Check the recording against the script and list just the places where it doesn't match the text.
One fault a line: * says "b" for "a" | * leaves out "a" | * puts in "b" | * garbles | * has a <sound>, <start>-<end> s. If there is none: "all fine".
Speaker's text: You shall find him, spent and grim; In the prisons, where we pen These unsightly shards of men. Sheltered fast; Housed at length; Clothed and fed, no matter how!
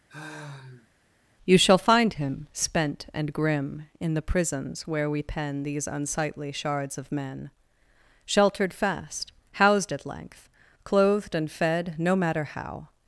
* has a sigh, 0.1-0.9 s